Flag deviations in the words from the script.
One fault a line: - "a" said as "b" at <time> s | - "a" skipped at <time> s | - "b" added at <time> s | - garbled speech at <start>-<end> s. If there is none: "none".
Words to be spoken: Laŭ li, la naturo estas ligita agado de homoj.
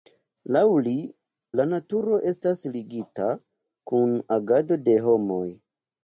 - "kun" added at 3.9 s